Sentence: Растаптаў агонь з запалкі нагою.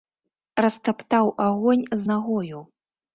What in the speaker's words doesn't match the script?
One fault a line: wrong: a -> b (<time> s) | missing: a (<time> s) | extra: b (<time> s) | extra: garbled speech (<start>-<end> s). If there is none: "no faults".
missing: запалкі (2.0 s)